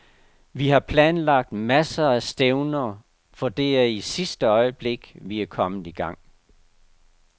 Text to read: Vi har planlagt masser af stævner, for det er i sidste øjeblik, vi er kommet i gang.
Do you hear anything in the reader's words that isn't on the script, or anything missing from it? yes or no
no